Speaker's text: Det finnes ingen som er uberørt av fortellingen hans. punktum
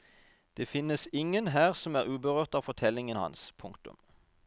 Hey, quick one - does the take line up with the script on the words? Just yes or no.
no